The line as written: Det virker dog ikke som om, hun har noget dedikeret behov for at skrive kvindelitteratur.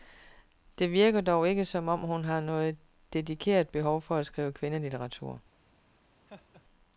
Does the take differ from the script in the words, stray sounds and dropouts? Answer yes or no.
yes